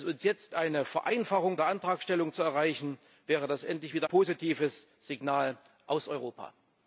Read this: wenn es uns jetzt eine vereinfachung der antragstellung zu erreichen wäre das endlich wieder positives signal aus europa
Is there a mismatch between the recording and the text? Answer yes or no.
no